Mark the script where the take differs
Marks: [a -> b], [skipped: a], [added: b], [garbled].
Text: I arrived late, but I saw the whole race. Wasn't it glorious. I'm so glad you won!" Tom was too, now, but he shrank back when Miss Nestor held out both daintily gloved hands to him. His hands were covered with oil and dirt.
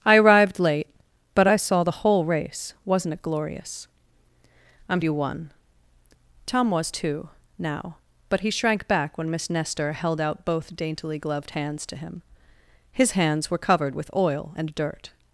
I arrived late, but I saw the whole race. Wasn't it glorious. I'm [skipped: so glad] you won!" Tom was too, now, but he shrank back when Miss Nestor held out both daintily gloved hands to him. His hands were covered with oil and dirt.